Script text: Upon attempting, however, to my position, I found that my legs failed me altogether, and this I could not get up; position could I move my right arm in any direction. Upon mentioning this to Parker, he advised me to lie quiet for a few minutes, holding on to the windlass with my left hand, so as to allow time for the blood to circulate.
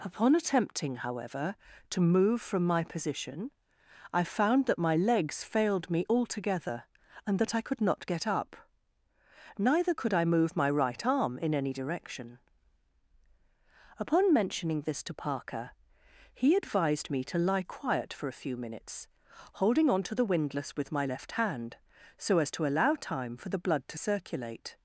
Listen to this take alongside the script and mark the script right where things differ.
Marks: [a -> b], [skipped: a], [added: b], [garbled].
Upon attempting, however, to [added: move from] my position, I found that my legs failed me altogether, and [this -> that] I could not get up; [position -> neither] could I move my right arm in any direction. Upon mentioning this to Parker, he advised me to lie quiet for a few minutes, holding on to the windlass with my left hand, so as to allow time for the blood to circulate.